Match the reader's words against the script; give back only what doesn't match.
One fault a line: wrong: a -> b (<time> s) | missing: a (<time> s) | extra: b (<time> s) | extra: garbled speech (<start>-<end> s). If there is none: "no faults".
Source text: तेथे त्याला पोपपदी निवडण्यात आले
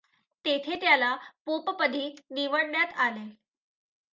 no faults